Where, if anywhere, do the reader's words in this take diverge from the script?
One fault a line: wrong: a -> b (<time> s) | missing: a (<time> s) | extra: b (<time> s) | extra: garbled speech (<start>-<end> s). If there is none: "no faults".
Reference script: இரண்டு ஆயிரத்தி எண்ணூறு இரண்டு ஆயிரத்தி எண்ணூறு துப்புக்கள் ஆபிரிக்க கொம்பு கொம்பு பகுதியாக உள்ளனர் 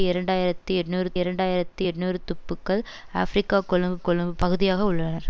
no faults